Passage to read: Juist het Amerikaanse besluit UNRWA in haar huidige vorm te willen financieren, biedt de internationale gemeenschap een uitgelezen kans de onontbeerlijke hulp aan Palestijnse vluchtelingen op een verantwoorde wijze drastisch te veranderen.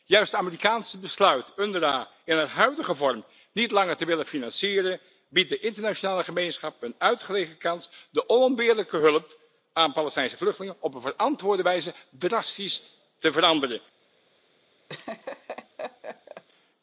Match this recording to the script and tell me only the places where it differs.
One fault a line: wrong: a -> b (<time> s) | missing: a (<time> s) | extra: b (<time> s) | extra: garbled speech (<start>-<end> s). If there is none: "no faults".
extra: niet langer (3.5 s)